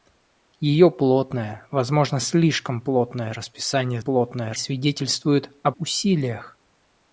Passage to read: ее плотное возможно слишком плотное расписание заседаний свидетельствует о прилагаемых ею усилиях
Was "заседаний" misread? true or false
true